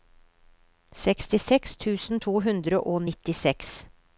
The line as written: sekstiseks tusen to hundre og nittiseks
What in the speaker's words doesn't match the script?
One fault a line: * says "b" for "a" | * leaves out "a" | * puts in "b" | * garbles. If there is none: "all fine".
all fine